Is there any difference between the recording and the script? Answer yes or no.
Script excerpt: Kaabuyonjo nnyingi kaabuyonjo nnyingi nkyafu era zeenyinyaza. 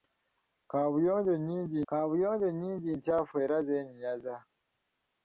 no